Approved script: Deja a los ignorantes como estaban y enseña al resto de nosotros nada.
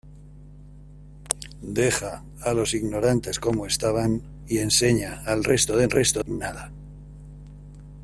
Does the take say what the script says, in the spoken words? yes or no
no